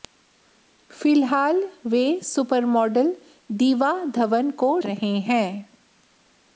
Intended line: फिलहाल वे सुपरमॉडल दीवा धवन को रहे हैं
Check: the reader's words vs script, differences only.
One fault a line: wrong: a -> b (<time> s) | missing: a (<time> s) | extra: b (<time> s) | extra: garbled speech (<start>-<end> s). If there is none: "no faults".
no faults